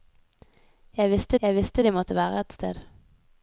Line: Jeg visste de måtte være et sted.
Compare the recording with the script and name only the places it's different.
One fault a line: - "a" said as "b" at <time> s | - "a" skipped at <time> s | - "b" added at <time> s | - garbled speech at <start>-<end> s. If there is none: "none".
- "jeg visste" added at 1.4 s